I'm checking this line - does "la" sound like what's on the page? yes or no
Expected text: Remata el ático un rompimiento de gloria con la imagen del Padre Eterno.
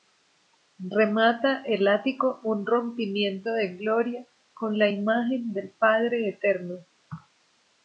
yes